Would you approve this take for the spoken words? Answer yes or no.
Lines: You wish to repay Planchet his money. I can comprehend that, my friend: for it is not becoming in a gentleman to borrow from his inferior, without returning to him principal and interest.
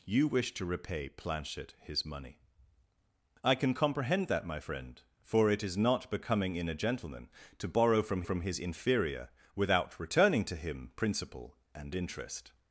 no